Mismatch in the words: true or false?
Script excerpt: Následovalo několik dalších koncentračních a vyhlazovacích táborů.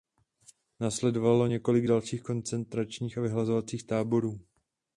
false